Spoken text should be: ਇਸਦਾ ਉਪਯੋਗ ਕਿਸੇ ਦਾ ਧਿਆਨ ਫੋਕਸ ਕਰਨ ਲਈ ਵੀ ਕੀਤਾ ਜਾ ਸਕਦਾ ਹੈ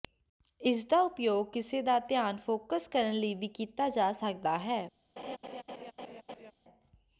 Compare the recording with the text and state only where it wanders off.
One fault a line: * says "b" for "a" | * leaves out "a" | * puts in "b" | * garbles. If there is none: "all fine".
all fine